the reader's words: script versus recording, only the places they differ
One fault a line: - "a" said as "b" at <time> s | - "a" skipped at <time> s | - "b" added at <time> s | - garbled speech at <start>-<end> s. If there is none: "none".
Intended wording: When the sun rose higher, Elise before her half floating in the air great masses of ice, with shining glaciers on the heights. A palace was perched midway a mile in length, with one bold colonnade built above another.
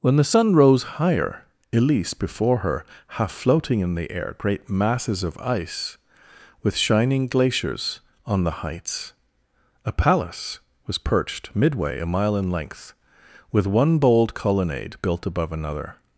none